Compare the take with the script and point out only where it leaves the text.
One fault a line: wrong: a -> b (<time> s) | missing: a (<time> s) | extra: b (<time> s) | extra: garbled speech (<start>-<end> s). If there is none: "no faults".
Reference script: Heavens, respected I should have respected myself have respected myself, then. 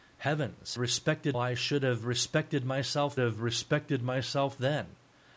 no faults